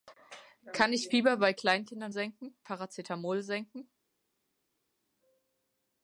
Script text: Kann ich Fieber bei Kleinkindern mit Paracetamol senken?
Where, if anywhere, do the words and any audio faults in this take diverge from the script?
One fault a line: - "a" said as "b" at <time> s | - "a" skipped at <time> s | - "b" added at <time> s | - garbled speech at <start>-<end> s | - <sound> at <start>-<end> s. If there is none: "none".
- "mit" said as "senken" at 2.1 s